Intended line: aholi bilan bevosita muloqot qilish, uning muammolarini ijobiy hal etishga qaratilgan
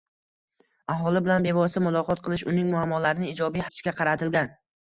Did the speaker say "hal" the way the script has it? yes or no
no